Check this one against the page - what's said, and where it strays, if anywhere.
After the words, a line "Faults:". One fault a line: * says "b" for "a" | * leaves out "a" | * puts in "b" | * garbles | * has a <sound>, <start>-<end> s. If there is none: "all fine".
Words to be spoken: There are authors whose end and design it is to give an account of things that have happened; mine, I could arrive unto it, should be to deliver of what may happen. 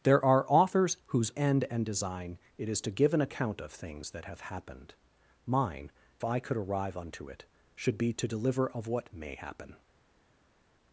There are authors whose end and design it is to give an account of things that have happened; mine, I could arrive unto it, should be to deliver of what may happen.
Faults:
all fine